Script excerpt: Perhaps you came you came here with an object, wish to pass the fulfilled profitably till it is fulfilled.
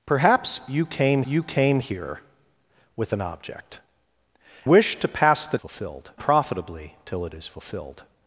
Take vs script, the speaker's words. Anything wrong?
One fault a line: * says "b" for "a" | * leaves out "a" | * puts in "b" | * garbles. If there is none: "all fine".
all fine